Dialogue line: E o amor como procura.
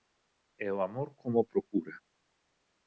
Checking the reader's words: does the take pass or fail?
pass